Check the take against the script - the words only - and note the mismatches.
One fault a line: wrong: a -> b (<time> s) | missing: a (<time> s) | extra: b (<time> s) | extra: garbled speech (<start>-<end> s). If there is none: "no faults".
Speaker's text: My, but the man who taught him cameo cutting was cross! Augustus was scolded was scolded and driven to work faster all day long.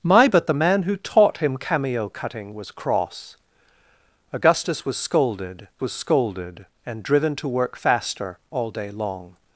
no faults